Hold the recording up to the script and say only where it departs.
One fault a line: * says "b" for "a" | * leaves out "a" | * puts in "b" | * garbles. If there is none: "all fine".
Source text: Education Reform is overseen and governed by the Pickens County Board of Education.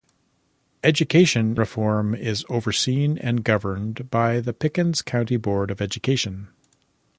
all fine